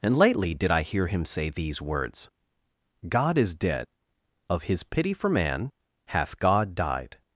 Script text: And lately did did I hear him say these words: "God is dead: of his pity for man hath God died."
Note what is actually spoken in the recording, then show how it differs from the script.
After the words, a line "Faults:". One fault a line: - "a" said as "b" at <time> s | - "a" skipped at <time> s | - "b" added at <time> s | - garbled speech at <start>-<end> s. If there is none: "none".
And lately did I hear him say these words: "God is dead: of his pity for man hath God died."
Faults:
- "did" skipped at 0.7 s